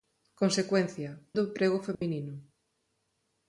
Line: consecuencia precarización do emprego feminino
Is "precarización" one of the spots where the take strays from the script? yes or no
yes